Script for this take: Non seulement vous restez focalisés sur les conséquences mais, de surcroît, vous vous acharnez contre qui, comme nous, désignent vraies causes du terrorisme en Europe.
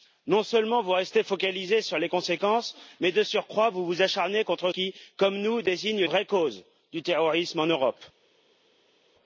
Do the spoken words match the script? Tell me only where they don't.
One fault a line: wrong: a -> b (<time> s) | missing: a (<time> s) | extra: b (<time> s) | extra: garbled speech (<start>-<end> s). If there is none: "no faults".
no faults